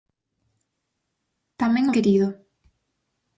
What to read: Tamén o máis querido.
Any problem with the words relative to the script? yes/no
yes